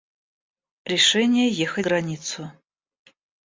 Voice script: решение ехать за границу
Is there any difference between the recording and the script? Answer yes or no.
yes